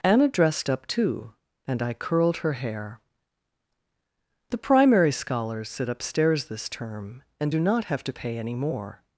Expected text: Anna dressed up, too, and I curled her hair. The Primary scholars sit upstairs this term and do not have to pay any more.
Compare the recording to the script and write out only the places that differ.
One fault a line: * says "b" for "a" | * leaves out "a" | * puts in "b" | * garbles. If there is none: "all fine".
all fine